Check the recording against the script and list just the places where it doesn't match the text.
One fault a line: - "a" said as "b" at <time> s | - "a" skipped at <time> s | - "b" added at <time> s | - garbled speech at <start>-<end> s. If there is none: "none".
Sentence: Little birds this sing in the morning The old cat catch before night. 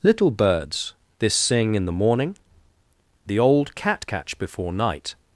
none